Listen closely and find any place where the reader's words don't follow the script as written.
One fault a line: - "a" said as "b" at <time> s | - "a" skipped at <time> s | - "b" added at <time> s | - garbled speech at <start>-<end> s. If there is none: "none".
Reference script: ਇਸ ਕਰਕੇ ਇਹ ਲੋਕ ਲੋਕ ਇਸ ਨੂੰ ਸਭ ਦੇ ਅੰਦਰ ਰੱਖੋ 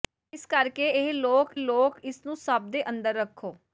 none